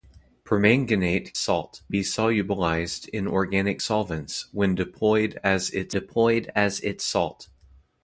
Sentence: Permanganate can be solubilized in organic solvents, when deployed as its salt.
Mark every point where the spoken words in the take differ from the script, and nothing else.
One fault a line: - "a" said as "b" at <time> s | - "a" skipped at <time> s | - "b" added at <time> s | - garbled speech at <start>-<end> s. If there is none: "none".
- "can" said as "salt" at 1.4 s
- "deployed as its" added at 5.9 s